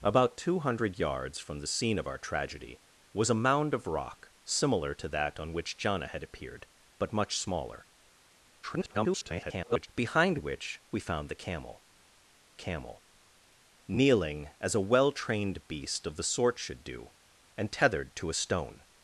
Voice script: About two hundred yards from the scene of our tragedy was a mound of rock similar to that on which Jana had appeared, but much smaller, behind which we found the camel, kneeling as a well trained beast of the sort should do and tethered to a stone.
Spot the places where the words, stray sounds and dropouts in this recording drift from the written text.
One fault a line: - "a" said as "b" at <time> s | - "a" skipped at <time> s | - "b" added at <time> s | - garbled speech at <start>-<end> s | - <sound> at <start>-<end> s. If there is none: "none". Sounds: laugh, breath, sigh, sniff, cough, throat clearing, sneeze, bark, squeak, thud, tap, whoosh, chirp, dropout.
- garbled speech at 8.6-9.9 s
- "camel" added at 12.5 s